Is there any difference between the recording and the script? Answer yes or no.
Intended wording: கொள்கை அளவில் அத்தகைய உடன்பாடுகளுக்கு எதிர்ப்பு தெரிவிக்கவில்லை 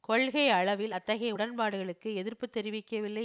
no